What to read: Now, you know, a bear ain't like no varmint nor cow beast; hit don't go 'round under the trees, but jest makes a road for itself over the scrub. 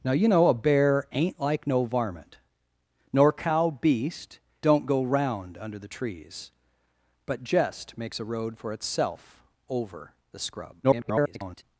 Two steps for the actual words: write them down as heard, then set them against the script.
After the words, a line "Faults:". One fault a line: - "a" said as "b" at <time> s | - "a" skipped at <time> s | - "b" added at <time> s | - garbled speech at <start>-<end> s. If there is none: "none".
Now, you know, a bear ain't like no varmint nor cow beast; don't go 'round under the trees, but jest makes a road for itself over the scrub. [garbled]
Faults:
- "hit" skipped at 4.4 s
- garbled speech at 10.8-11.6 s